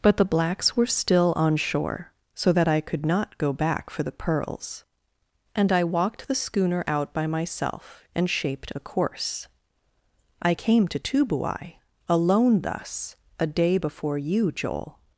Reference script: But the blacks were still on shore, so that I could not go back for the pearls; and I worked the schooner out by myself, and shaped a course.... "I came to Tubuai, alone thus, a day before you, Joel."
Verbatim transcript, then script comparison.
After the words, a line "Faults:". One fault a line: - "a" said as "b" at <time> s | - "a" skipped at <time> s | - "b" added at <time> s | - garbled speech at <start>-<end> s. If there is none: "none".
But the blacks were still on shore, so that I could not go back for the pearls; and I walked the schooner out by myself, and shaped a course.... "I came to Tubuai, alone thus, a day before you, Joel."
Faults:
- "worked" said as "walked" at 5.8 s